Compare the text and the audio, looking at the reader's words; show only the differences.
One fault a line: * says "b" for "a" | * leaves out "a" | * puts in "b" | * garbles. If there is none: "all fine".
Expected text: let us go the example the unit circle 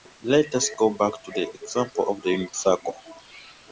* puts in "back to"
* puts in "of"